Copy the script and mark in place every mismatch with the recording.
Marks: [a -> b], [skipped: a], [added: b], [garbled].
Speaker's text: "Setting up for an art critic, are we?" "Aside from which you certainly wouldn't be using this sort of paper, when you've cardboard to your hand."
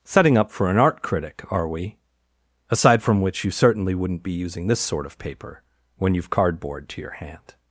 "Setting up for an art critic, are we?" "Aside from which you certainly wouldn't be using this sort of paper, when you've cardboard to your hand."